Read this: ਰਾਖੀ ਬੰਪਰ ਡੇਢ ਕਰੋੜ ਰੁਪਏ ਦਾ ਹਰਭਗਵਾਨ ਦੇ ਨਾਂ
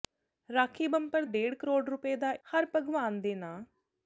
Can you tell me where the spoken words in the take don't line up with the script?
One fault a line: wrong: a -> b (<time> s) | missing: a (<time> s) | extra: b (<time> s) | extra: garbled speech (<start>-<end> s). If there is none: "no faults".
no faults